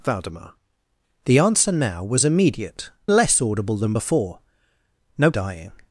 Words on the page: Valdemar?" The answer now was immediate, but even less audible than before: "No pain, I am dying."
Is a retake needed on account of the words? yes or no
yes